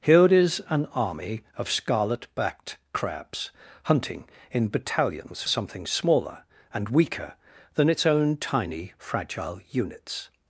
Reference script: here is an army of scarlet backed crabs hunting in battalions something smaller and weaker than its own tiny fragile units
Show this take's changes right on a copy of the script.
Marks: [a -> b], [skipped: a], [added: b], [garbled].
here is an army of scarlet backed crabs hunting in battalions something smaller and weaker than its own tiny fragile units